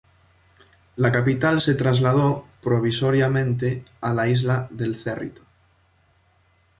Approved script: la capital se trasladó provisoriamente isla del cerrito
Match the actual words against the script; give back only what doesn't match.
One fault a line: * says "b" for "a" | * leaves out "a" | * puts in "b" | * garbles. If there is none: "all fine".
* puts in "a la"